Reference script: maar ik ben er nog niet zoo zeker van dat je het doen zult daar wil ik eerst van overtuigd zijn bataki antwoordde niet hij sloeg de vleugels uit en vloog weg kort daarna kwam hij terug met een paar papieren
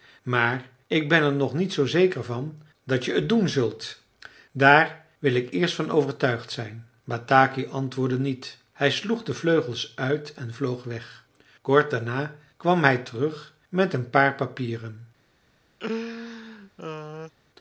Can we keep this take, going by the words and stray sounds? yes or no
no